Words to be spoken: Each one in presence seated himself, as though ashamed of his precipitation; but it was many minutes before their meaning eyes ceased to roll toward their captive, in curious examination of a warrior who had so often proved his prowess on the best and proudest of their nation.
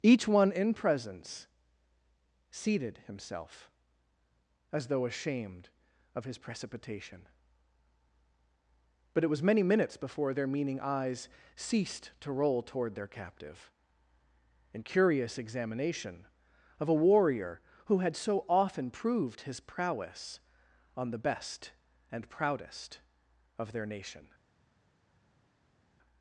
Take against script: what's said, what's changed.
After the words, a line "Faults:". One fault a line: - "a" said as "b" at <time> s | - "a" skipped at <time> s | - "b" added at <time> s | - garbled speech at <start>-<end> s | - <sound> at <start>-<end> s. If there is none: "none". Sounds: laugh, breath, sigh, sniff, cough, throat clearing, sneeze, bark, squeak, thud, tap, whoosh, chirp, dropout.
Each one in presence seated himself, as though ashamed of his precipitation; but it was many minutes before their meaning eyes ceased to roll toward their captive, in curious examination of a warrior who had so often proved his prowess on the best and proudest of their nation.
Faults:
none